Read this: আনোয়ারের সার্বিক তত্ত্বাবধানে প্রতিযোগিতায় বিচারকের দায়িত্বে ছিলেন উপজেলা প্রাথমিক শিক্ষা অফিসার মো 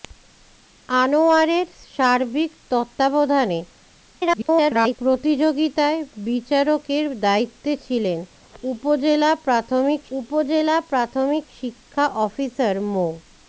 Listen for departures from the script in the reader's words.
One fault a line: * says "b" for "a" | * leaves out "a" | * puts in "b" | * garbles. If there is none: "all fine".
* garbles
* puts in "উপজেলা প্রাথমিক"